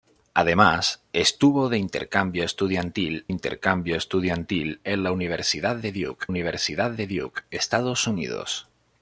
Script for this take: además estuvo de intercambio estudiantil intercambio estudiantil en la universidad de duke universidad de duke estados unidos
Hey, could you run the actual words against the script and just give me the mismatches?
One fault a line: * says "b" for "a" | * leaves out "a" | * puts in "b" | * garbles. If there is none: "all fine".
all fine